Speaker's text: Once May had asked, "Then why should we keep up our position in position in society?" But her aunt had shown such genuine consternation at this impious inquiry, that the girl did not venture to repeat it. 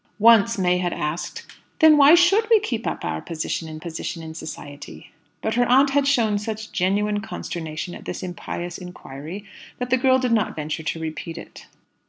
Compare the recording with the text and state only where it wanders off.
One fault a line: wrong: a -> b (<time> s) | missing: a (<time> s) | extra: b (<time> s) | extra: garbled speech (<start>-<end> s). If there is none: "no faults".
no faults